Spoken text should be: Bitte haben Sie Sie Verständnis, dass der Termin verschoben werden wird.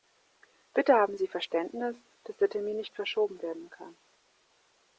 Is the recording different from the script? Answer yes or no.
yes